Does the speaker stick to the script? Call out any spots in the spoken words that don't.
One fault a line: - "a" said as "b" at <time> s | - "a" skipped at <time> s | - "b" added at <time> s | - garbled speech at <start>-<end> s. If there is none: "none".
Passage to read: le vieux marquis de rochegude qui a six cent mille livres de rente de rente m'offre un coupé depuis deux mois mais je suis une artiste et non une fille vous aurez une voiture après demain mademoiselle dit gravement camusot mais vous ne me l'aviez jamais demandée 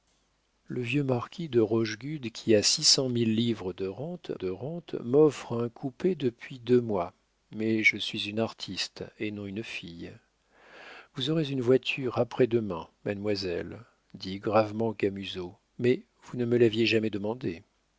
none